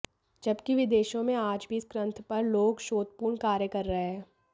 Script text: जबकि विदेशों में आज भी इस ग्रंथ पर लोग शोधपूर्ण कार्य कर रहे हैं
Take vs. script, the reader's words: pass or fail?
pass